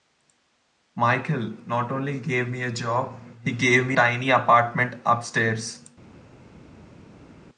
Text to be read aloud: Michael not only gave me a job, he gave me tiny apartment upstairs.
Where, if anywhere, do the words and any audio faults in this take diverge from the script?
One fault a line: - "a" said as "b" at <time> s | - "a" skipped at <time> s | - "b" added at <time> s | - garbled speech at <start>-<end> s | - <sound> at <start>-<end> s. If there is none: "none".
none